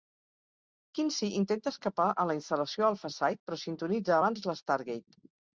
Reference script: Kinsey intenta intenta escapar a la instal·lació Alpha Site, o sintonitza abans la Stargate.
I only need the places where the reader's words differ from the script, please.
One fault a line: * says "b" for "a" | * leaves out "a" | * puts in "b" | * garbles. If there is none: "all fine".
* leaves out "intenta"
* says "però" for "o"